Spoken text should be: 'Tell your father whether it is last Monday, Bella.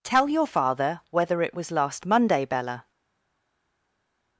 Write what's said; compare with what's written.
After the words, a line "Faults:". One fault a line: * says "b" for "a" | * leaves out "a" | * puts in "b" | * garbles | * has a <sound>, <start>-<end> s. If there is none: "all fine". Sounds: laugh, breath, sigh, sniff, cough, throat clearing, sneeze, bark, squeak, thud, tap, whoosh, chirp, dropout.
'Tell your father whether it was last Monday, Bella.
Faults:
* says "was" for "is"